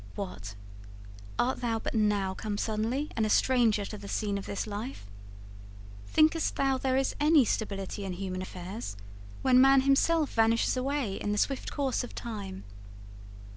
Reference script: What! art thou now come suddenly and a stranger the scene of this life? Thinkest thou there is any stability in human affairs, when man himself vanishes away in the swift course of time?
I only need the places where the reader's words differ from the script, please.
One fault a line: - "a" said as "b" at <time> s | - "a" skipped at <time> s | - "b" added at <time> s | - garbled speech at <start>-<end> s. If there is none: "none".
- "but" added at 1.8 s
- "to" added at 3.9 s